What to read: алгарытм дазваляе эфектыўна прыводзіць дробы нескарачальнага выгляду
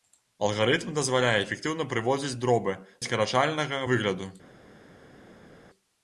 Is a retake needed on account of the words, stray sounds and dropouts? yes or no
no